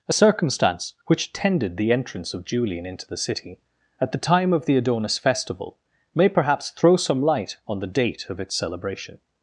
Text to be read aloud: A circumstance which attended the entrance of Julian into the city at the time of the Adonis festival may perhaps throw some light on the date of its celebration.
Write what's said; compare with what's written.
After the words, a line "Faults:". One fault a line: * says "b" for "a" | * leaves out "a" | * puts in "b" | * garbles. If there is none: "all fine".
A circumstance which tended the entrance of Julian into the city at the time of the Adonis festival may perhaps throw some light on the date of its celebration.
Faults:
* says "tended" for "attended"